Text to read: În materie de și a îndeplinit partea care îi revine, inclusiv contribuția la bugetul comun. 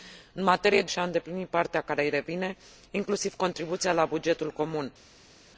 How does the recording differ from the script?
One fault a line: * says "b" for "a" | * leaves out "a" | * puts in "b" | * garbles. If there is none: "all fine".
all fine